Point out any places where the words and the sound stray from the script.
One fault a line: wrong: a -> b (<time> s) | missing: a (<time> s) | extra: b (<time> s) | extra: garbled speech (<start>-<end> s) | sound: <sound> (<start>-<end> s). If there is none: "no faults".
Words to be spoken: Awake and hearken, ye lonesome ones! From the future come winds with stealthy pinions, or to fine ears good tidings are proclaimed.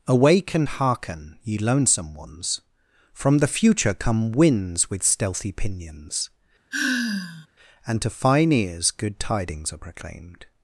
sound: sigh (6.7-7.5 s)
wrong: or -> and (7.8 s)